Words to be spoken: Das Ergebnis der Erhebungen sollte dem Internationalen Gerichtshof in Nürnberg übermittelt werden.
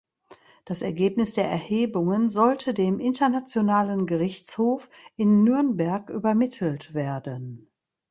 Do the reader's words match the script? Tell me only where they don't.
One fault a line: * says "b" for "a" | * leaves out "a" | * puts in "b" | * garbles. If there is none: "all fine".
all fine